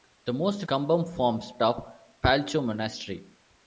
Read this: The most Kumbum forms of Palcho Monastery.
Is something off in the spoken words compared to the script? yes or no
no